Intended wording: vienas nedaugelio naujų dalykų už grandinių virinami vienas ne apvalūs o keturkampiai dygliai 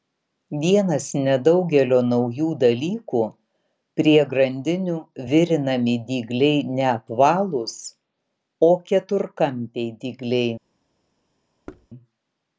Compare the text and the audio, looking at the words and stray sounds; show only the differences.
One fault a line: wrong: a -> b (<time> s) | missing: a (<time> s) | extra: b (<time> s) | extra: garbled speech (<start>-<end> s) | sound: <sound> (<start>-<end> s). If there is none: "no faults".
wrong: už -> prie (4.0 s)
wrong: vienas -> dygliai (6.1 s)
sound: thud (11.7-11.9 s)